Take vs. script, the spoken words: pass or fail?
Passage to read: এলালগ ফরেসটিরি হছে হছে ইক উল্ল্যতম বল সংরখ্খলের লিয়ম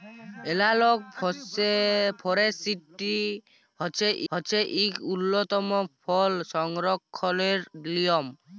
pass